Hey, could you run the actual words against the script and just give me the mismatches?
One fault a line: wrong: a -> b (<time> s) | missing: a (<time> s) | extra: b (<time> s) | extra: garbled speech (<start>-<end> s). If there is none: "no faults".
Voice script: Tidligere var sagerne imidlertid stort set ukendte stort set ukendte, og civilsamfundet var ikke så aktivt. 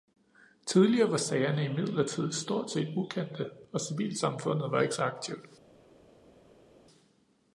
missing: stort set ukendte (3.5 s)